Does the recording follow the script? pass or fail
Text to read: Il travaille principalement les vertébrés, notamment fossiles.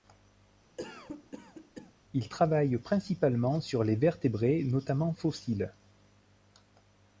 fail